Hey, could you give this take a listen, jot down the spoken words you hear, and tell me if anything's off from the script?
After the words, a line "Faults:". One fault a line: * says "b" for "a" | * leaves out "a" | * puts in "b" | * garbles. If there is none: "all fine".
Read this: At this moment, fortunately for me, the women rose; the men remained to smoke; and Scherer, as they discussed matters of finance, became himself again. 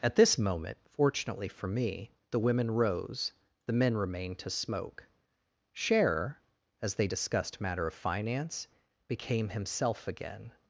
At this moment, fortunately for me, the women rose; the men remained to smoke; Scherer, as they discussed matter of finance, became himself again.
Faults:
* leaves out "and"
* says "matter" for "matters"